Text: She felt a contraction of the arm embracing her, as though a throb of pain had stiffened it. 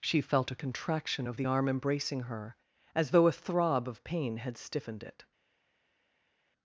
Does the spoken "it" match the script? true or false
true